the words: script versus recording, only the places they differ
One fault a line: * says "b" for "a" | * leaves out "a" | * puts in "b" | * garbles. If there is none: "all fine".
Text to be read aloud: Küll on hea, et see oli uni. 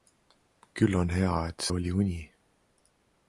* leaves out "see"